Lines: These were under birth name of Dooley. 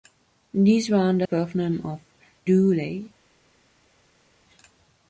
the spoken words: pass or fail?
pass